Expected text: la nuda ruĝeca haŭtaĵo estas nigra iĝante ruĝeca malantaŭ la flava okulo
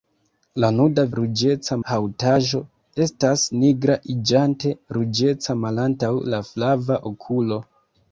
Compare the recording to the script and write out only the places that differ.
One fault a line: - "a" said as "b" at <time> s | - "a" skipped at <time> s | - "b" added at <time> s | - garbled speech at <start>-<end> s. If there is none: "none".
none